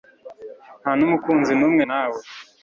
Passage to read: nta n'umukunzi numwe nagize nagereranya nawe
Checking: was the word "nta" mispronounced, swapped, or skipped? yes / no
no